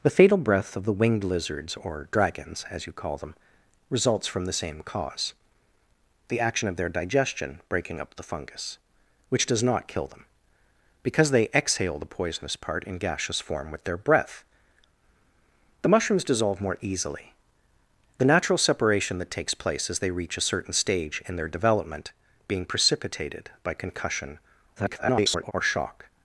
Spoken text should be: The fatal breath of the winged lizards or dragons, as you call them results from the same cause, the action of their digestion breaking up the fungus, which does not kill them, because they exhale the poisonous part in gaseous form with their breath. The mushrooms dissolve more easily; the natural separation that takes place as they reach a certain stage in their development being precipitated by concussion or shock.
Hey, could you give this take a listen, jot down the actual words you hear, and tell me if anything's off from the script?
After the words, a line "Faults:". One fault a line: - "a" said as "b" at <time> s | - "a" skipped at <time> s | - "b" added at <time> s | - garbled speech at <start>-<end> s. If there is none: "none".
The fatal breath of the winged lizards or dragons, as you call them results from the same cause, the action of their digestion breaking up the fungus, which does not kill them, because they exhale the poisonous part in gaseous form with their breath. The mushrooms dissolve more easily; the natural separation that takes place as they reach a certain stage in their development being precipitated by concussion [garbled] or shock.
Faults:
- garbled speech at 24.8-25.5 s